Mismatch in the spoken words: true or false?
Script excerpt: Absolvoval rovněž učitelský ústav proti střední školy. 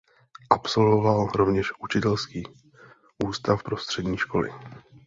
true